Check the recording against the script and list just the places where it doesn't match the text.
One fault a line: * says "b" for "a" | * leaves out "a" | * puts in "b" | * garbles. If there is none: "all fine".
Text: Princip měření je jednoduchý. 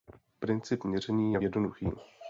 all fine